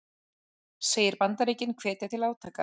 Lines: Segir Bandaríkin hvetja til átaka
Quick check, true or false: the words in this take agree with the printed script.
true